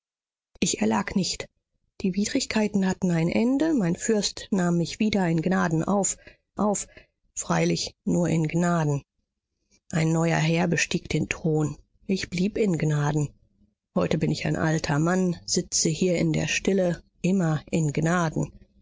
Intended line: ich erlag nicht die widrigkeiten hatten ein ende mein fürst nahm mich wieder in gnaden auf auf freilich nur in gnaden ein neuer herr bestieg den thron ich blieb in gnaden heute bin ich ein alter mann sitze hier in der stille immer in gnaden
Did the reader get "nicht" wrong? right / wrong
right